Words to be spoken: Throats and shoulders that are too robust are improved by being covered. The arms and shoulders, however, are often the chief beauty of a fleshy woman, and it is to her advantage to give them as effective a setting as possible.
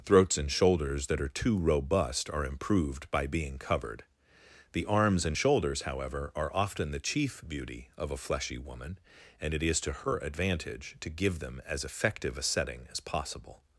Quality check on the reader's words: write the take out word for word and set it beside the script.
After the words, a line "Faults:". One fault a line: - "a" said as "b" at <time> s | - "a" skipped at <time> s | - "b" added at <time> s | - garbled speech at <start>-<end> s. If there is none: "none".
Throats and shoulders that are too robust are improved by being covered. The arms and shoulders, however, are often the chief beauty of a fleshy woman, and it is to her advantage to give them as effective a setting as possible.
Faults:
none